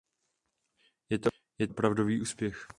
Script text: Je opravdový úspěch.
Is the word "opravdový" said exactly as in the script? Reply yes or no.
yes